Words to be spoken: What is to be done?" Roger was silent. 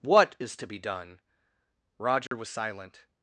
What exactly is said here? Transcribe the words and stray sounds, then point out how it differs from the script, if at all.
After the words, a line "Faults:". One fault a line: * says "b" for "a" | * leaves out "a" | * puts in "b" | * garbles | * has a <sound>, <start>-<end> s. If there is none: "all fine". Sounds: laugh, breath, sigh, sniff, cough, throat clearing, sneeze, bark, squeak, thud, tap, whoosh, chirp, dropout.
What is to be done?" Roger was silent.
Faults:
* has a dropout, 2.3-2.3 s